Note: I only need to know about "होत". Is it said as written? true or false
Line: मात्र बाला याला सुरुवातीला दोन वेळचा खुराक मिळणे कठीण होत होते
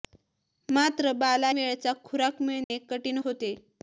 false